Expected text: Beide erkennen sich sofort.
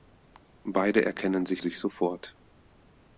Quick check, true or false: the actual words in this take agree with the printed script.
false